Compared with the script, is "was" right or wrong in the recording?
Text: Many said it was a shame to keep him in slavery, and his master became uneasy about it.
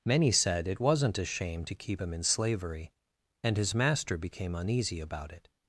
wrong